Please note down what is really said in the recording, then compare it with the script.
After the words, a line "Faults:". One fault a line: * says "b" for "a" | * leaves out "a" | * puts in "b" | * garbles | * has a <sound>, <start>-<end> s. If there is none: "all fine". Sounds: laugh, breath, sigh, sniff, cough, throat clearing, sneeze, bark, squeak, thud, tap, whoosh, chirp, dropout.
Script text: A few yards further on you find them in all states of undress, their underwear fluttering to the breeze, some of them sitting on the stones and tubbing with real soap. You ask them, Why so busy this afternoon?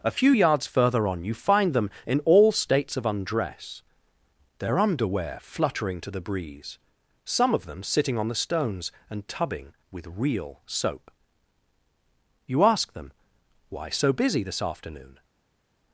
A few yards further on you find them in all states of undress, their underwear fluttering to the breeze, some of them sitting on the stones and tubbing with real soap. You ask them, Why so busy this afternoon?
Faults:
all fine